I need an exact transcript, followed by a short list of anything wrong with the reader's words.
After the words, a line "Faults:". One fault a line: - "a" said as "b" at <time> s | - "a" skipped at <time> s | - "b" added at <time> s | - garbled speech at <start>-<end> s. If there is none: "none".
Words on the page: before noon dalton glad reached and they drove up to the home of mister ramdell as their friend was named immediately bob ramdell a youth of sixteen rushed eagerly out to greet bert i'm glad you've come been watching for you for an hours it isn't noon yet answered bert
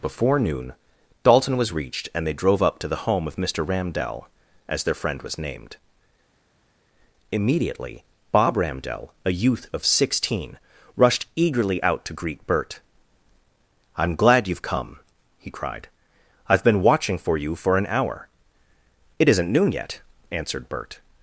before noon dalton was reached and they drove up to the home of mister ramdell as their friend was named immediately bob ramdell a youth of sixteen rushed eagerly out to greet bert i'm glad you've come he cried i've been watching for you for an hour it isn't noon yet answered bert
Faults:
- "glad" said as "was" at 1.6 s
- "he cried i've" added at 15.4 s
- "hours" said as "hour" at 17.9 s